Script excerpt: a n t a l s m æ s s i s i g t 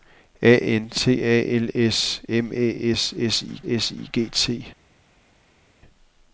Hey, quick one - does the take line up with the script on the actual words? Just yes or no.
yes